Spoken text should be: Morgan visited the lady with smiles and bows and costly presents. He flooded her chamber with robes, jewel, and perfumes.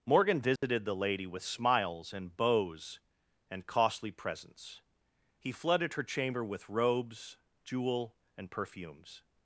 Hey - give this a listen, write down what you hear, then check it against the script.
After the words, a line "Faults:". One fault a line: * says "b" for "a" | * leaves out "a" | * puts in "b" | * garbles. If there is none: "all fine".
Morgan visited the lady with smiles and bows and costly presents. He flooded her chamber with robes, jewel, and perfumes.
Faults:
all fine